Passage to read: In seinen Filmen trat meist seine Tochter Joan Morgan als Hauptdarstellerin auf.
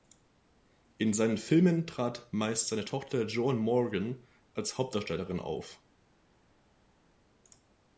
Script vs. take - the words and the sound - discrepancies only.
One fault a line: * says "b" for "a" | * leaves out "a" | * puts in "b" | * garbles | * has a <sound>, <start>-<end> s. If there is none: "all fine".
all fine